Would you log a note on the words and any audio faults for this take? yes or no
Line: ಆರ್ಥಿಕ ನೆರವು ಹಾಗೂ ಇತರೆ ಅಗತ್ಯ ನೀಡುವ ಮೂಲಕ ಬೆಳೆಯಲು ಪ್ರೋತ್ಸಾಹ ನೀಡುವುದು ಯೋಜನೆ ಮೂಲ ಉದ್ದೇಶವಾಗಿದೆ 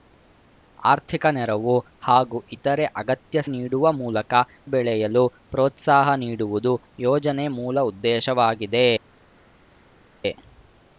no